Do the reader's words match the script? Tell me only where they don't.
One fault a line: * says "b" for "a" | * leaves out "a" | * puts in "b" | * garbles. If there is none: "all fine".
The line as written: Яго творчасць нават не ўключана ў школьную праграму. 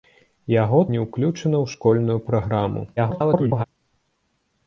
* leaves out "творчасць нават"
* garbles